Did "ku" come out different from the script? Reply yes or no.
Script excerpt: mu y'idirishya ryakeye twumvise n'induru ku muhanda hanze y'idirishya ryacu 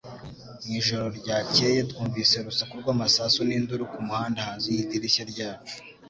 no